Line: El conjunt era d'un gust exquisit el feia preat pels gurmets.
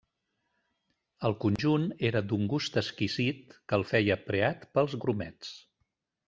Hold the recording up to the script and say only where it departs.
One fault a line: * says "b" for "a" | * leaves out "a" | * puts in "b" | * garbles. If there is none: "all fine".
* puts in "que"